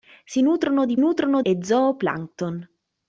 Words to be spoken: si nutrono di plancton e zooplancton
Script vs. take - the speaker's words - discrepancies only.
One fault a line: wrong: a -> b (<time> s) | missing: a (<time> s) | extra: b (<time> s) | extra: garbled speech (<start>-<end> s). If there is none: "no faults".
wrong: plancton -> nutrono (1.0 s)